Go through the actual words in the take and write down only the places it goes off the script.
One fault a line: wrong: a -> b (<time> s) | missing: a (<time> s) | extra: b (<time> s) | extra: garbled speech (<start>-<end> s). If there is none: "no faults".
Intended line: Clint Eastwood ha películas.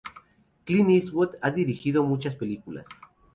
extra: dirigido muchas (1.5 s)